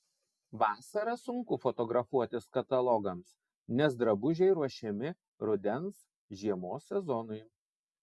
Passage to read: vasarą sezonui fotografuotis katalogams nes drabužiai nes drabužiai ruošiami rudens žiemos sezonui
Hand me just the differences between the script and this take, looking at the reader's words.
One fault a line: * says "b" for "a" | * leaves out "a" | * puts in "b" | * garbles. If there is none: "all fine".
* says "sunku" for "sezonui"
* leaves out "nes drabužiai"